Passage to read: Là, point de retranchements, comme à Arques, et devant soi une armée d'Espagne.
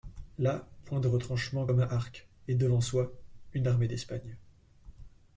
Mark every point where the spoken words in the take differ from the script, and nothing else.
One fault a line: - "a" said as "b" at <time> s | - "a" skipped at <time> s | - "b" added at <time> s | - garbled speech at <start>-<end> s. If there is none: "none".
none